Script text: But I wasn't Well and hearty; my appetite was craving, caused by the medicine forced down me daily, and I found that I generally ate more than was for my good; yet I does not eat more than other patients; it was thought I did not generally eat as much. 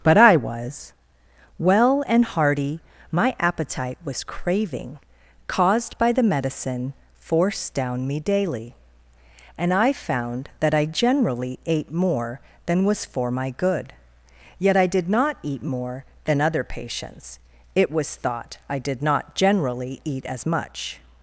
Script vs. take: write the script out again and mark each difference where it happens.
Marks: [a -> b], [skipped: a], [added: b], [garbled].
But I [wasn't -> was] Well and hearty; my appetite was craving, caused by the medicine forced down me daily, and I found that I generally ate more than was for my good; yet I [does -> did] not eat more than other patients; it was thought I did not generally eat as much.